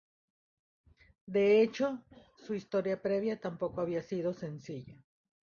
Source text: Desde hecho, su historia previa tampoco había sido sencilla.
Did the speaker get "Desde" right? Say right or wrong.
wrong